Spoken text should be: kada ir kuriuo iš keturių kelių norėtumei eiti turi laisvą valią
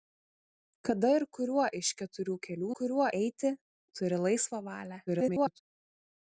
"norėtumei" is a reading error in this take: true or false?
true